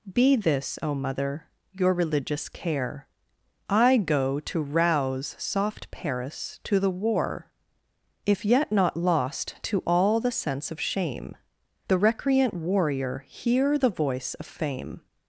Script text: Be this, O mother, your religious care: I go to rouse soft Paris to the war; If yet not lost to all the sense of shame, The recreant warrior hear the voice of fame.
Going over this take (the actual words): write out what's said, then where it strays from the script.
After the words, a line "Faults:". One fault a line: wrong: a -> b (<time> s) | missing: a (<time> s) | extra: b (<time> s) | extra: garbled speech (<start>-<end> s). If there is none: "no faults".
Be this, O mother, your religious care: I go to rouse soft Paris to the war; If yet not lost to all the sense of shame, The recreant warrior hear the voice of fame.
Faults:
no faults